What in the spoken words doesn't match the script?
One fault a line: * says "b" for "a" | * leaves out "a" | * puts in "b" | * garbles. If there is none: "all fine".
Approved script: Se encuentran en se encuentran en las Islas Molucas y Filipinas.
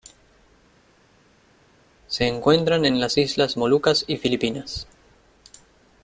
* leaves out "se encuentran en"